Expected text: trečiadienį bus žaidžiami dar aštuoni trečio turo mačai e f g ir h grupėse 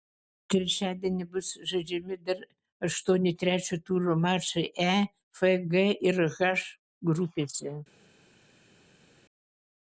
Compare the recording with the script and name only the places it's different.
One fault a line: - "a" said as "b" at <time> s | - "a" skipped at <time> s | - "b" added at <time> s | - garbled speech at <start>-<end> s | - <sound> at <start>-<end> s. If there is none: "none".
none